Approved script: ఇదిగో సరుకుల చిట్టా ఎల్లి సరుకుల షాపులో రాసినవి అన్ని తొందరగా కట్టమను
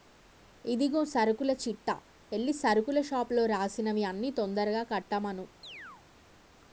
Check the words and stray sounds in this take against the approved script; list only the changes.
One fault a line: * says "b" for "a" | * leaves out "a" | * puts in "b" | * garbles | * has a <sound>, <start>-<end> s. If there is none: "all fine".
* has a chirp, 5.6-6.0 s